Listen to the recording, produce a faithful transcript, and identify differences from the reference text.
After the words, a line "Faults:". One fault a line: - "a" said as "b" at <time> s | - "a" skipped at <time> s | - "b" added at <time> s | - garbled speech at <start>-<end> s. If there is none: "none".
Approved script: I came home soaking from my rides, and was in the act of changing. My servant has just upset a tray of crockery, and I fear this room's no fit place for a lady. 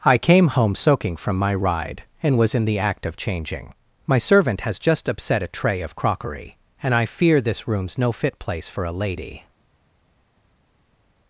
I came home soaking from my ride, and was in the act of changing. My servant has just upset a tray of crockery, and I fear this room's no fit place for a lady.
Faults:
- "rides" said as "ride" at 1.5 s